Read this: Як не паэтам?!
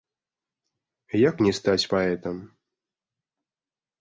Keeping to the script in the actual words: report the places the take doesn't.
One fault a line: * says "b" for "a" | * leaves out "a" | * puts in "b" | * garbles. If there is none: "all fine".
* puts in "стаць"